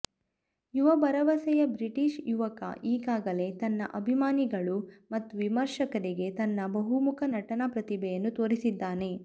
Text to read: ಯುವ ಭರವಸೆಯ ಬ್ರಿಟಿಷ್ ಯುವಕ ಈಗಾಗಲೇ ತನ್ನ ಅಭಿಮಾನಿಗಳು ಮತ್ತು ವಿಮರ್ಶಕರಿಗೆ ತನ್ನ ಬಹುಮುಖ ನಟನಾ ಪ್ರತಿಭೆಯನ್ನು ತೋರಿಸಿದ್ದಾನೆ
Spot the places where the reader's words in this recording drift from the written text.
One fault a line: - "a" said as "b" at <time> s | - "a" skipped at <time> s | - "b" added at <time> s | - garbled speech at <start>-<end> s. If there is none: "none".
none